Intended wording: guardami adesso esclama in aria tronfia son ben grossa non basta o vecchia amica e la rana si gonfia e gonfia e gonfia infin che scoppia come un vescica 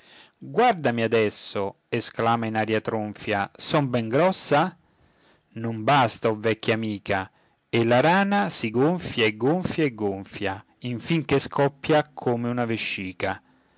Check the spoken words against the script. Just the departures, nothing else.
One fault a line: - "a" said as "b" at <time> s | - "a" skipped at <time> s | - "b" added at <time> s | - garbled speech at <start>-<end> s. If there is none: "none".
- "un" said as "una" at 12.5 s